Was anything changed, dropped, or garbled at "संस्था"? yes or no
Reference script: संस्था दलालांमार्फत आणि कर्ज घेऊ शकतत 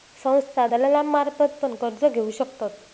no